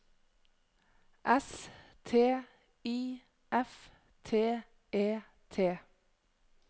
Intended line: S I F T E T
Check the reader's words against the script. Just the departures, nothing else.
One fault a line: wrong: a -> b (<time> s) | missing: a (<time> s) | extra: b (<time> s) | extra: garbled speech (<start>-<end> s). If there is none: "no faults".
extra: T (2.0 s)